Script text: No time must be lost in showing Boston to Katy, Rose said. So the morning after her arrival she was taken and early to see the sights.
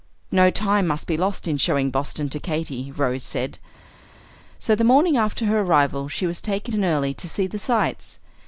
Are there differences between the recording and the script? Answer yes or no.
no